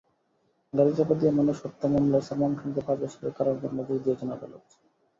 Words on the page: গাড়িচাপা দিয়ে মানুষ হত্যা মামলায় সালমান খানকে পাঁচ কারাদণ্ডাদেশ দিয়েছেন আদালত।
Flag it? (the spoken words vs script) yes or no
yes